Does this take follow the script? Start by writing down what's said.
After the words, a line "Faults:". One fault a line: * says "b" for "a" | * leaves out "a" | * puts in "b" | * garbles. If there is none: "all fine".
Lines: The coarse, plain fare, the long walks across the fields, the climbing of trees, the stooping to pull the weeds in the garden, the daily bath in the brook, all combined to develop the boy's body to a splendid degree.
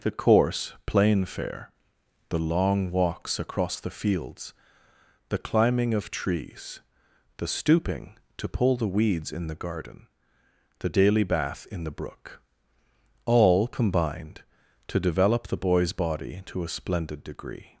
The coarse, plain fare, the long walks across the fields, the climbing of trees, the stooping to pull the weeds in the garden, the daily bath in the brook, all combined to develop the boy's body to a splendid degree.
Faults:
all fine